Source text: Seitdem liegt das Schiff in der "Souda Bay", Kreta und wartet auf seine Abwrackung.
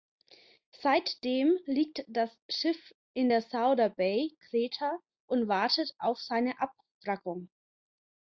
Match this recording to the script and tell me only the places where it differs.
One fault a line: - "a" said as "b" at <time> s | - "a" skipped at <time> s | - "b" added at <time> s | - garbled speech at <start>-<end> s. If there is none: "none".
none